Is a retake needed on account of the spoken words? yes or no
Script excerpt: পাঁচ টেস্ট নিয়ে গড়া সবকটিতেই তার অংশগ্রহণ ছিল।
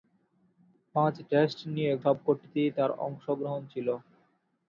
yes